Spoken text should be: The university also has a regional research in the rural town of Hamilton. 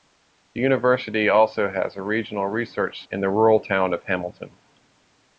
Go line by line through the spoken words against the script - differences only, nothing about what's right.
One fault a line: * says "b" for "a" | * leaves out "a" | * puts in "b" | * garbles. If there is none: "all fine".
all fine